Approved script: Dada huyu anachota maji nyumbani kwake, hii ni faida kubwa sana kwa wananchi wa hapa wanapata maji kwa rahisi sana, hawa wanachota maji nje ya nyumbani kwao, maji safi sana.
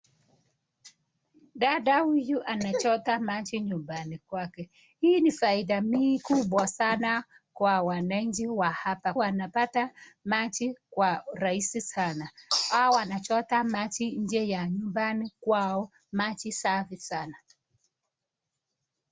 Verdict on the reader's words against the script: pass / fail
pass